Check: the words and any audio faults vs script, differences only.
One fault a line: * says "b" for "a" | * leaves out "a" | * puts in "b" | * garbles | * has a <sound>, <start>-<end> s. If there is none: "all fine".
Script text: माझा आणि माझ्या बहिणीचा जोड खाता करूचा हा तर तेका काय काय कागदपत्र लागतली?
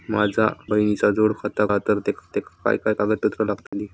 * leaves out "आणि माझ्या"
* leaves out "करूचा"
* puts in "तेका"
* has a dropout, 3.7-3.7 s